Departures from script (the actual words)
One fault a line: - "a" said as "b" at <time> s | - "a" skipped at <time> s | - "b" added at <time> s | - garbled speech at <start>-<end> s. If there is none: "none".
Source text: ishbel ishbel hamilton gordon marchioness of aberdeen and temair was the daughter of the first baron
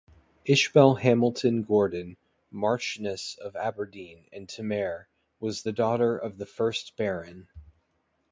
- "ishbel" skipped at 0.9 s